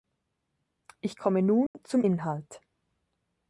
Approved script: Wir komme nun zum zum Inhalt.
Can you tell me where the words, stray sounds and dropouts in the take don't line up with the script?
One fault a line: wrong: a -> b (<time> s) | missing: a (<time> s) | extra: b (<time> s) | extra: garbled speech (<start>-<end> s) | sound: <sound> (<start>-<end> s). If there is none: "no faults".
wrong: Wir -> Ich (1.0 s)
sound: dropout (1.7-1.7 s)
missing: zum (2.0 s)